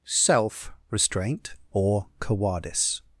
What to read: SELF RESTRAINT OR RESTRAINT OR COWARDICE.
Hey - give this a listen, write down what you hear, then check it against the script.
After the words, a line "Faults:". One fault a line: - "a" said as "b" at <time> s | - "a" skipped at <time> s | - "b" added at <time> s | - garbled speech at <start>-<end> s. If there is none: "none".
SELF RESTRAINT OR COWARDICE.
Faults:
- "RESTRAINT OR" skipped at 2.1 s